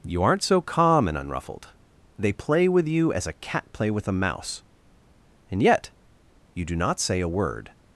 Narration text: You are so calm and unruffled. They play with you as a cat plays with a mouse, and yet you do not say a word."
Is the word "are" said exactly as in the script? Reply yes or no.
no